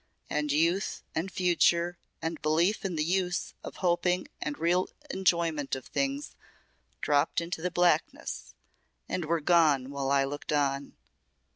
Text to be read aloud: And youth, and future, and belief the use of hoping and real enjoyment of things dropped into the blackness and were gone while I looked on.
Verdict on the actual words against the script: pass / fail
fail